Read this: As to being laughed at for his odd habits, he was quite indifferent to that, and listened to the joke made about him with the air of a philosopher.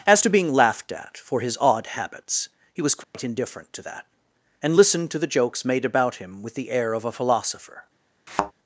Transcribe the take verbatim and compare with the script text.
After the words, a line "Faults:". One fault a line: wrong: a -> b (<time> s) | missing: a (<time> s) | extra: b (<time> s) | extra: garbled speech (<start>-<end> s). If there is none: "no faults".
As to being laughed at for his odd habits, he was quite indifferent to that, and listened to the jokes made about him with the air of a philosopher.
Faults:
wrong: joke -> jokes (5.3 s)